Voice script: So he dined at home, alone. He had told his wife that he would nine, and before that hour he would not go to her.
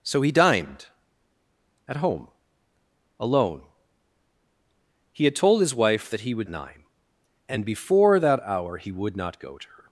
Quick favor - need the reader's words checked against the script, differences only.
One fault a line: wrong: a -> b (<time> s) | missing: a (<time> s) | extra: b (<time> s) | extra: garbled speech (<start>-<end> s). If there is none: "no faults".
no faults